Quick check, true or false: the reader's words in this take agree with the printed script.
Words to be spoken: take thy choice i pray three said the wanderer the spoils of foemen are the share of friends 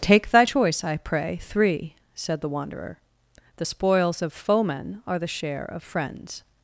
true